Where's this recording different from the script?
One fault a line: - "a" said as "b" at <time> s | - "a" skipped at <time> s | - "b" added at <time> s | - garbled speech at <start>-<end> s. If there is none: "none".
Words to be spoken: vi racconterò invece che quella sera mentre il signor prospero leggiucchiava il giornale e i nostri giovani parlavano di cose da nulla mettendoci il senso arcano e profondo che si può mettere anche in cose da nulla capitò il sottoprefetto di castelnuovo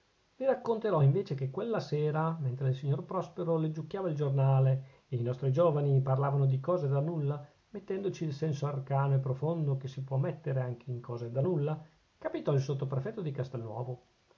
none